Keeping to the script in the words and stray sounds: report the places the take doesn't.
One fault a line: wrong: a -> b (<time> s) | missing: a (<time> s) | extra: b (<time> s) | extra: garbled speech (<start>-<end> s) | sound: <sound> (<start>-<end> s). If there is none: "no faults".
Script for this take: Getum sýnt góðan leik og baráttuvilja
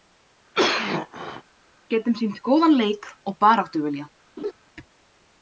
sound: cough (0.5-1.4 s)
sound: laugh (4.4-4.5 s)